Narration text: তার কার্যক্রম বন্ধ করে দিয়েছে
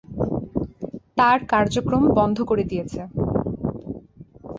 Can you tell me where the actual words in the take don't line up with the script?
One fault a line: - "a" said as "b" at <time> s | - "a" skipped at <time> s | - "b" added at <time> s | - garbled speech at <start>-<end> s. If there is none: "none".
none